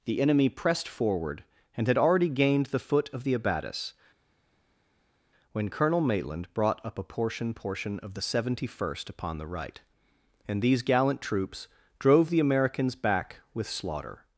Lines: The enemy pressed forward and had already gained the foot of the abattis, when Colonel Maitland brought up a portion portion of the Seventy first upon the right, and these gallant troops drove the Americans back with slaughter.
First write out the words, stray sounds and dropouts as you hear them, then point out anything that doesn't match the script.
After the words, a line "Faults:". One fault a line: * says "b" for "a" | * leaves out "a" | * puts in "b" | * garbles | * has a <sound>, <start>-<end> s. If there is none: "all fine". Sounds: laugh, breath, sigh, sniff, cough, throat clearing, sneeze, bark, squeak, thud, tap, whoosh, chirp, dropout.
The enemy pressed forward and had already gained the foot of the abattis, when Colonel Maitland brought up a portion portion of the Seventy first upon the right, and these gallant troops drove the Americans back with slaughter.
Faults:
all fine